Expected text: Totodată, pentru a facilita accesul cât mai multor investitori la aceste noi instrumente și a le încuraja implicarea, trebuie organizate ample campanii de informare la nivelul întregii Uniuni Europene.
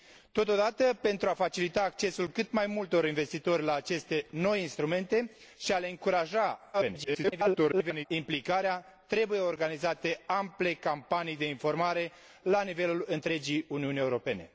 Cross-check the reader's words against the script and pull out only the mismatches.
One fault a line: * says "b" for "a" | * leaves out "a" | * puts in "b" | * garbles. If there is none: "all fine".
* garbles